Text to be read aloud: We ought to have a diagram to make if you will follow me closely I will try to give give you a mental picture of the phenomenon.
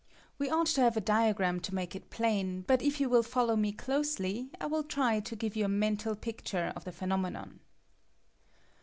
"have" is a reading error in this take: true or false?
false